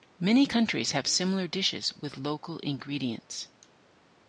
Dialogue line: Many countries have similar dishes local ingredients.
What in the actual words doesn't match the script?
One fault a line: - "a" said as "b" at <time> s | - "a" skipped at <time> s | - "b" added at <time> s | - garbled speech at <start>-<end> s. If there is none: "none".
- "with" added at 1.9 s